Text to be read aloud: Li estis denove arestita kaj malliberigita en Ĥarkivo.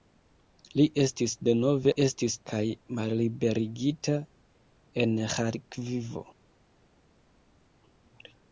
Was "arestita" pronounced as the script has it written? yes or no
no